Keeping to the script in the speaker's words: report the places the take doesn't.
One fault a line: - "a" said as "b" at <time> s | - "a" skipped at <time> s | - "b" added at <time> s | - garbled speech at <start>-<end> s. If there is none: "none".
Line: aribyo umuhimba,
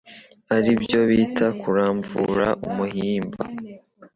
- "bita kuramvura" added at 1.1 s